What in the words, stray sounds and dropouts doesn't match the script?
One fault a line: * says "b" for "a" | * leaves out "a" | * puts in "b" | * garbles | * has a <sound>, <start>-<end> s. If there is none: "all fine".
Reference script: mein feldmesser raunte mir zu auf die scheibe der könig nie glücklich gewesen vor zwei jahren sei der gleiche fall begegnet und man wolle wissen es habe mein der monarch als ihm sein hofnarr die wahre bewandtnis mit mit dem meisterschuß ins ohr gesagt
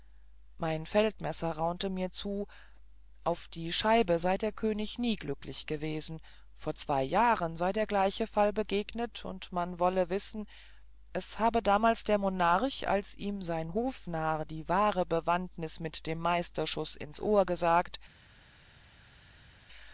* puts in "sei"
* says "damals" for "mein"
* leaves out "mit"